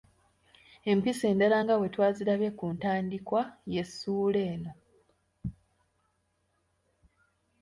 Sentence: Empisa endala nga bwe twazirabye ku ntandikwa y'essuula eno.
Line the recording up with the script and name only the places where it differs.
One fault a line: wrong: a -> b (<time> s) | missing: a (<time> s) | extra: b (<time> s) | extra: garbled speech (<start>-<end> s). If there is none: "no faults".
no faults